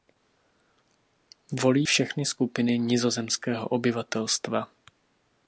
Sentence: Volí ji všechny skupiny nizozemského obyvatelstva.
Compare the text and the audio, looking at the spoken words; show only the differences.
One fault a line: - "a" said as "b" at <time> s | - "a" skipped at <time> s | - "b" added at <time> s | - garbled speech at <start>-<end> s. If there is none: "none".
- "ji" skipped at 1.9 s